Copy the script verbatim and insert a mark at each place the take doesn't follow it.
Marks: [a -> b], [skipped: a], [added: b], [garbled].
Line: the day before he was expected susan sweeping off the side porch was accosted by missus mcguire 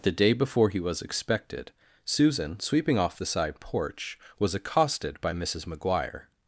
the day before he was expected susan sweeping off the side porch was accosted by missus mcguire